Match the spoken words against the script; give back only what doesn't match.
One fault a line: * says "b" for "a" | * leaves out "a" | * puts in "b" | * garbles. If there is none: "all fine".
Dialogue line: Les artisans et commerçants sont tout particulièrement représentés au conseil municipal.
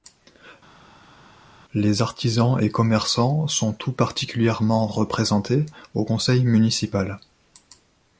all fine